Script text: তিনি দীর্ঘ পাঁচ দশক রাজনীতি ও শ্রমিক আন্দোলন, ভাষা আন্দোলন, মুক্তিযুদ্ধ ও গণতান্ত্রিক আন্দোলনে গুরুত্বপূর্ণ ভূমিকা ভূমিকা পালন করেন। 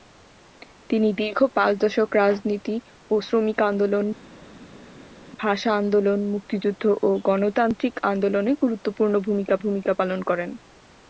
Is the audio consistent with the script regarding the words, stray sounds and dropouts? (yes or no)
yes